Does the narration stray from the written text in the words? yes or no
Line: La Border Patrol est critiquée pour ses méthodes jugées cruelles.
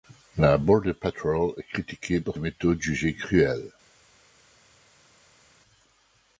yes